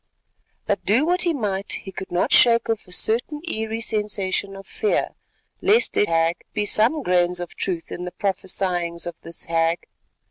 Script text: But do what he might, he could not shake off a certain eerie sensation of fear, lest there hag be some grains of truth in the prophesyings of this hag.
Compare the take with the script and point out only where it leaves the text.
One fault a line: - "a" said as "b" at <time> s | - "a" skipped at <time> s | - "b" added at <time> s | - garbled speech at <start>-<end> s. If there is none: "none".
none